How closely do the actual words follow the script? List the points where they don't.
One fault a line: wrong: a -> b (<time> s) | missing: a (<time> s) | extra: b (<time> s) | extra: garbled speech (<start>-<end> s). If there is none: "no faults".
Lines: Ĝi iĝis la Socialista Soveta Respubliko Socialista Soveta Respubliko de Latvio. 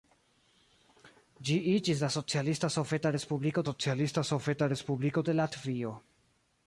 no faults